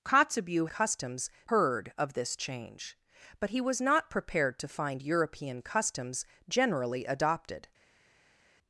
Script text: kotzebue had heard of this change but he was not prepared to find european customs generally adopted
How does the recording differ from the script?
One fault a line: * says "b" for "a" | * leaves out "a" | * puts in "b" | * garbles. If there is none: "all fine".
* says "customs" for "had"